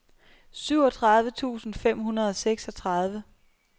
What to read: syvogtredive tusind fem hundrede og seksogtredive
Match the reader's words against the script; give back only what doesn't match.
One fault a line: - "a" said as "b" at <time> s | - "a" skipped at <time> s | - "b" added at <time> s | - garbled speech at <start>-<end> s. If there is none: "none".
none